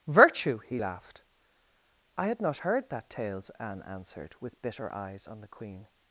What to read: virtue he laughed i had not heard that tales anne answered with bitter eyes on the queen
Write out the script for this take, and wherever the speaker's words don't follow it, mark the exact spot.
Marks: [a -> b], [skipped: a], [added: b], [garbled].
virtue he laughed i had not heard that tales anne answered with bitter eyes on the queen